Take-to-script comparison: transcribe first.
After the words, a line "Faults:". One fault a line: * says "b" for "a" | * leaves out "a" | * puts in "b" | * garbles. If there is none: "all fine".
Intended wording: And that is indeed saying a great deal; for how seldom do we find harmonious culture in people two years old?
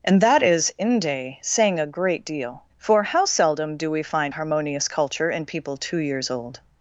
And that is inde saying a great deal; for how seldom do we find harmonious culture in people two years old?
Faults:
* says "inde" for "indeed"